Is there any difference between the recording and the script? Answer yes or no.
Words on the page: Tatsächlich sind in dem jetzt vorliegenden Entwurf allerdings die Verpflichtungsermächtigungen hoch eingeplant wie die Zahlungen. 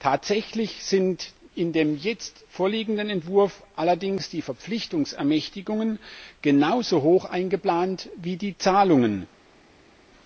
yes